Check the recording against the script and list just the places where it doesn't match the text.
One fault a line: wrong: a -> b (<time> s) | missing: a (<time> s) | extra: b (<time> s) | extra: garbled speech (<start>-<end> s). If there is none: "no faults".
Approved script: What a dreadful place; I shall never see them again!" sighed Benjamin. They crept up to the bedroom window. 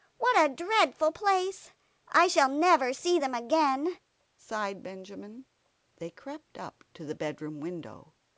no faults